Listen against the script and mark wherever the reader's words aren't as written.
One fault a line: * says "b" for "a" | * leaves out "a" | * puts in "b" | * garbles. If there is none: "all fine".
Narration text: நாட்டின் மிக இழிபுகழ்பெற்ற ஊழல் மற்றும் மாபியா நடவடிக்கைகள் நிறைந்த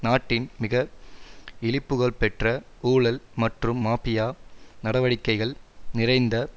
all fine